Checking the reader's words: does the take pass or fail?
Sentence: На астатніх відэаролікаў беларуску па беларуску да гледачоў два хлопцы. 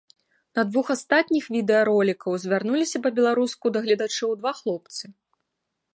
fail